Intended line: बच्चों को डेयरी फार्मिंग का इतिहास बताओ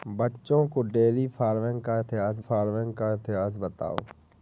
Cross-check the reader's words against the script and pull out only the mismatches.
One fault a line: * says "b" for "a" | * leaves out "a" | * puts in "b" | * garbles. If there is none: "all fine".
* puts in "फार्मिंग का इतिहास"